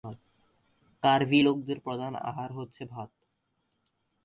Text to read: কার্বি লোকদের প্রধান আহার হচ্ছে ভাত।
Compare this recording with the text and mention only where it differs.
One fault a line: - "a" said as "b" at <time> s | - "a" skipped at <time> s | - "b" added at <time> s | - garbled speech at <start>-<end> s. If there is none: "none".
none